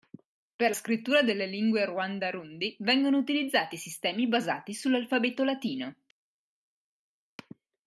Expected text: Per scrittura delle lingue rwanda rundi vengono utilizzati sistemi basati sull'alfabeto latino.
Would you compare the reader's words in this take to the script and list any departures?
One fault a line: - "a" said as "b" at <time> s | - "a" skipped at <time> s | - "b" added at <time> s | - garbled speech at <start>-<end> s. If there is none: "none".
none